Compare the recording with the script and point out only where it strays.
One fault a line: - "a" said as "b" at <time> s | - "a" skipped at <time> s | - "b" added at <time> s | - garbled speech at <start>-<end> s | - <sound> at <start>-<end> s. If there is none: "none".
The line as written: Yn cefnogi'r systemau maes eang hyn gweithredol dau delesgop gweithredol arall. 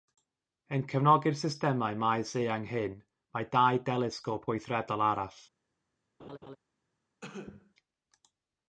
- "gweithredol" said as "mae" at 3.3 s
- laugh at 6.2-6.6 s
- cough at 7.2-7.7 s